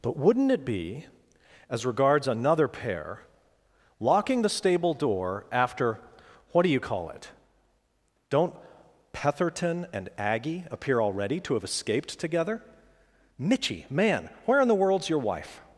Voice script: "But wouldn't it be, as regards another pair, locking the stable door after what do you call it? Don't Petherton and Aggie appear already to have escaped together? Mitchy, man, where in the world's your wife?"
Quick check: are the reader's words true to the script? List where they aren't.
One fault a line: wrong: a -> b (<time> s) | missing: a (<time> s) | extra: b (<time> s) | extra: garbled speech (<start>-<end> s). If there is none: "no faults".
no faults